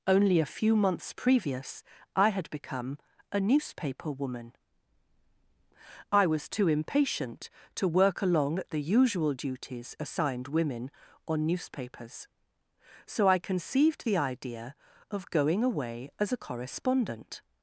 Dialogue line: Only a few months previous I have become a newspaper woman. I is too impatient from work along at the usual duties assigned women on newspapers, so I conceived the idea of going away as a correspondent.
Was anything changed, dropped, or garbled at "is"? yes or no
yes